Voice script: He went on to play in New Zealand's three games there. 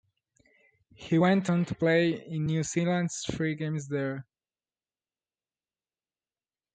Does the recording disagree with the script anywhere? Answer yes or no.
no